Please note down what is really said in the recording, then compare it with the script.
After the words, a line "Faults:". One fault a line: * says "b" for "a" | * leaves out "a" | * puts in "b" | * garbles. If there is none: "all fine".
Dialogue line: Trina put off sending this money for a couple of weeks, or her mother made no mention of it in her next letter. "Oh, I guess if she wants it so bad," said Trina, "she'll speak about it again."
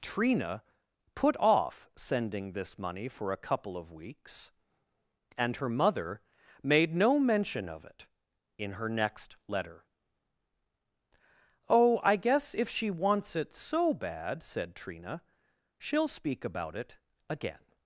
Trina put off sending this money for a couple of weeks, and her mother made no mention of it in her next letter. "Oh, I guess if she wants it so bad," said Trina, "she'll speak about it again."
Faults:
* says "and" for "or"